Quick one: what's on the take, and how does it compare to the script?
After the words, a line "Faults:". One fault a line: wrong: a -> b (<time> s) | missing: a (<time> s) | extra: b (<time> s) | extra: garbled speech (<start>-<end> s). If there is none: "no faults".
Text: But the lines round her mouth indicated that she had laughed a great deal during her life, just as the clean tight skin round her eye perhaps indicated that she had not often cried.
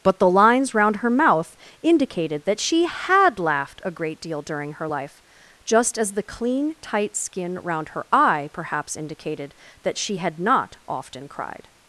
But the lines round her mouth indicated that she had laughed a great deal during her life, just as the clean tight skin round her eye perhaps indicated that she had not often cried.
Faults:
no faults